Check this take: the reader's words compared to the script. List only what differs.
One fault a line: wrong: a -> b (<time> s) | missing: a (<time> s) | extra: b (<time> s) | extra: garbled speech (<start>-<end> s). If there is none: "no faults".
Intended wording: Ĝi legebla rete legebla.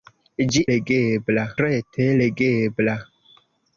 no faults